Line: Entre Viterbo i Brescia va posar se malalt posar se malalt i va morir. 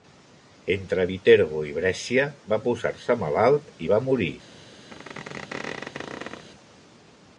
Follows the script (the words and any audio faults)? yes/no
no